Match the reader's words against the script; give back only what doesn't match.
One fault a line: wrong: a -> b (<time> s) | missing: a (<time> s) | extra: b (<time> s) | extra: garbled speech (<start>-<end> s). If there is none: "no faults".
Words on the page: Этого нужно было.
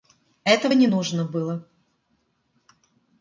extra: не (0.7 s)